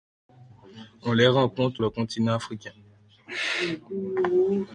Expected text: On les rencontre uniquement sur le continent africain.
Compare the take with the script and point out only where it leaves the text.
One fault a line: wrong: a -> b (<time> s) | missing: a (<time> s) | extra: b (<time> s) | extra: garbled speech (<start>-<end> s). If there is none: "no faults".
missing: uniquement sur (1.8 s)